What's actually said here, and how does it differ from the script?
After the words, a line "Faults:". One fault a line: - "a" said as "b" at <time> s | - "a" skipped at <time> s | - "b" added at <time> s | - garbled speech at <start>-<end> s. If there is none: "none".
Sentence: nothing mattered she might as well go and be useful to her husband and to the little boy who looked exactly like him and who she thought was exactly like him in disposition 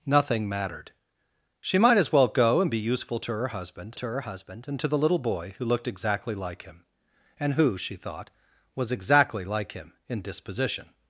nothing mattered she might as well go and be useful to her husband to her husband and to the little boy who looked exactly like him and who she thought was exactly like him in disposition
Faults:
- "to her husband" added at 3.9 s